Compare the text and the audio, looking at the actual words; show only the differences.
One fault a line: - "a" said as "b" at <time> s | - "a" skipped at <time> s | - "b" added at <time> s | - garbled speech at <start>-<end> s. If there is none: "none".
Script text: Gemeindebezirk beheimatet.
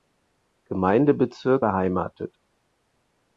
none